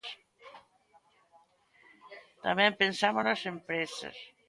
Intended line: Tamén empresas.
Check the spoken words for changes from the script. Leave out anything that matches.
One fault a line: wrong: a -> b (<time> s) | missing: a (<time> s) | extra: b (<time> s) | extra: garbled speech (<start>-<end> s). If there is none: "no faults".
extra: pensamos nas (2.8 s)